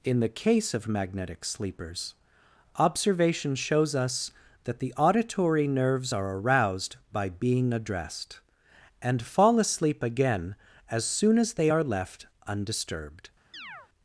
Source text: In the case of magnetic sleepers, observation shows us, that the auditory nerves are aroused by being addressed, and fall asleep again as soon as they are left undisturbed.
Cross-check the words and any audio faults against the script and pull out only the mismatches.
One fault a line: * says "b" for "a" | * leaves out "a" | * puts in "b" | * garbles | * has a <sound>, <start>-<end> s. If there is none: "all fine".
* has a chirp, 13.5-13.9 s